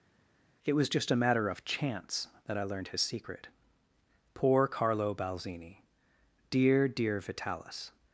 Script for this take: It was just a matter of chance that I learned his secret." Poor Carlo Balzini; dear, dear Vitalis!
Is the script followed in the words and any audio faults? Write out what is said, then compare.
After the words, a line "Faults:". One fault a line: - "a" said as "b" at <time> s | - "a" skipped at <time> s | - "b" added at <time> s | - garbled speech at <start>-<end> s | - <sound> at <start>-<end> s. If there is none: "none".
It was just a matter of chance that I learned his secret." Poor Carlo Balzini; dear, dear Vitalis!
Faults:
none